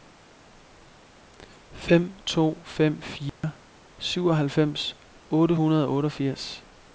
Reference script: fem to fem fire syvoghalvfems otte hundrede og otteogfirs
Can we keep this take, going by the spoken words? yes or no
yes